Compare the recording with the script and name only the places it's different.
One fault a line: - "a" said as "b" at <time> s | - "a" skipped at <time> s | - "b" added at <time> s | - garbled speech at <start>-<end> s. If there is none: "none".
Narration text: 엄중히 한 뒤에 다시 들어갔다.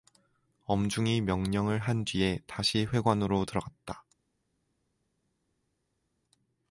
- "명령을" added at 1.2 s
- "회관으로" added at 2.9 s